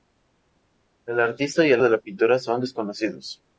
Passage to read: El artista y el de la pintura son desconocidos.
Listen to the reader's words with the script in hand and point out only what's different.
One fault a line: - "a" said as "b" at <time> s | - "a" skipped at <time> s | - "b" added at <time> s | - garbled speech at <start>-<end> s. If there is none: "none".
none